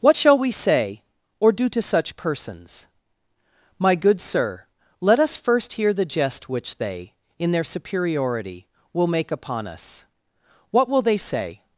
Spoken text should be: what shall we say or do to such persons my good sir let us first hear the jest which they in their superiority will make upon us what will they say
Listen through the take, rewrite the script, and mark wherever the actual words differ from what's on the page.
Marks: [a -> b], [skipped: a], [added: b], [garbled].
what shall we say or do to such persons my good sir let us first hear the jest which they in their superiority will make upon us what will they say